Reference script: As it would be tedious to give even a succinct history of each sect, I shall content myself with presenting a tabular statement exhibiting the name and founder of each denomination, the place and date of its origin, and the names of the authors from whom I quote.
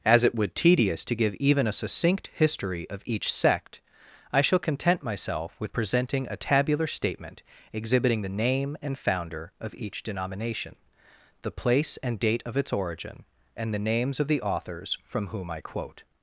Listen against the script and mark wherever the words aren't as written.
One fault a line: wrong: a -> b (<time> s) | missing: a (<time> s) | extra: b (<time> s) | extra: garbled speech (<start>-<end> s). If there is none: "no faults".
missing: be (0.6 s)